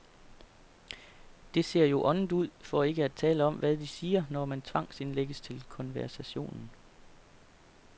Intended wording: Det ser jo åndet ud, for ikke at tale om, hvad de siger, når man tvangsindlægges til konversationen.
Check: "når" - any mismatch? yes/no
no